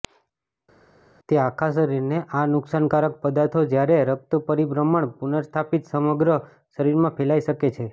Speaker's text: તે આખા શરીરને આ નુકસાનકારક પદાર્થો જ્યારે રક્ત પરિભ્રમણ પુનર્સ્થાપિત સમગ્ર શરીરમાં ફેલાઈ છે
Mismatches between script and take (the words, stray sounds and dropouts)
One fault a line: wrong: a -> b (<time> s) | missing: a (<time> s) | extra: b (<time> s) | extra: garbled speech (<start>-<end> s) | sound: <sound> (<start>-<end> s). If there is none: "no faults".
extra: શકે (7.5 s)